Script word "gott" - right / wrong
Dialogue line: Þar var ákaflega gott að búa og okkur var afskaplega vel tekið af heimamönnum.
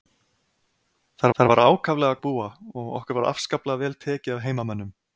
wrong